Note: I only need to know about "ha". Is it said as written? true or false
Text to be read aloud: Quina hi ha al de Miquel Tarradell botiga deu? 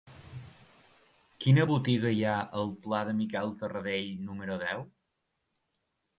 true